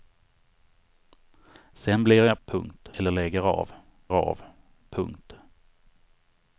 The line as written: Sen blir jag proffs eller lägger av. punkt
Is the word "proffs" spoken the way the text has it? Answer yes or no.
no